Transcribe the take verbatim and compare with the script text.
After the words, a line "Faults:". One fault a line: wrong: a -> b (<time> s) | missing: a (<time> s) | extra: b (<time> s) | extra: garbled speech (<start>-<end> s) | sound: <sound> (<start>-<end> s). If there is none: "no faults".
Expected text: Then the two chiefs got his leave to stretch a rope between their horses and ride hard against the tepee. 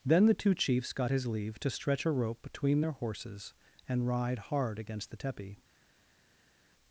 Then the two chiefs got his leave to stretch a rope between their horses and ride hard against the tepee.
Faults:
no faults